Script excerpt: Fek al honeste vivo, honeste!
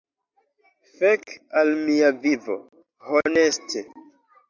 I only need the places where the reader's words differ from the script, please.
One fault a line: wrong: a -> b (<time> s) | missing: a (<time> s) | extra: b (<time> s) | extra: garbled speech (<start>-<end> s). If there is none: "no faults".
wrong: honeste -> mia (1.8 s)